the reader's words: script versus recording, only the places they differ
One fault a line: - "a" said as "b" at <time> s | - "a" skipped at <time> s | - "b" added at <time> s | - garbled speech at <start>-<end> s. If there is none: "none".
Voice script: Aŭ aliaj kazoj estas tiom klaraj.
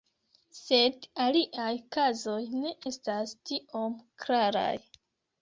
- "Aŭ" said as "Sed" at 0.6 s
- "ne" added at 2.6 s